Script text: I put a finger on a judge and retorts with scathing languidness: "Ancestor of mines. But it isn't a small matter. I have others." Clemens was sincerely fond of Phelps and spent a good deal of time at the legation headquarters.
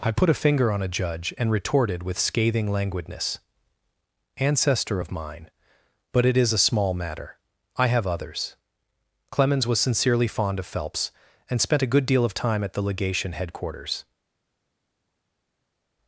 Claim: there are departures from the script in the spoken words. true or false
true